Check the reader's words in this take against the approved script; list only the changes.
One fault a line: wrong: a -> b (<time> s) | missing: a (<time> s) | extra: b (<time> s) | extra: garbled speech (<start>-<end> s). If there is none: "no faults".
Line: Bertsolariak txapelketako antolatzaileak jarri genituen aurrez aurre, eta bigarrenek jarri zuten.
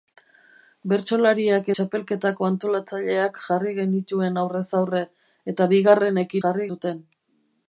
no faults